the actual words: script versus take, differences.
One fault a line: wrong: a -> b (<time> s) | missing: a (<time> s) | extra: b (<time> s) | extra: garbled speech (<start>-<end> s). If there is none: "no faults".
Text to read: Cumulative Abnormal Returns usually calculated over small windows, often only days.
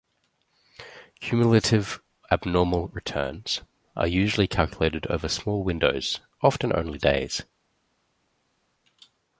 extra: are (4.0 s)